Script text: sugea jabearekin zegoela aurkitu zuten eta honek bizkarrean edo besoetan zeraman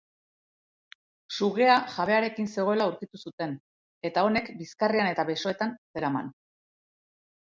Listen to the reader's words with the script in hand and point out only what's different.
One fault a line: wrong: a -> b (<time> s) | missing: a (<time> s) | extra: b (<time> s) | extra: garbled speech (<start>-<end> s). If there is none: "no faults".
wrong: edo -> eta (5.1 s)